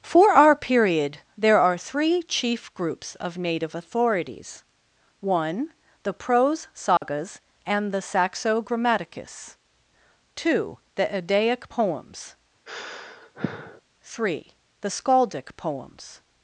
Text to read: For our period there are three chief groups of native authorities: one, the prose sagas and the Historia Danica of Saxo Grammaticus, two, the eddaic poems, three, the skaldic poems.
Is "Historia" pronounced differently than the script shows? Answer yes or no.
yes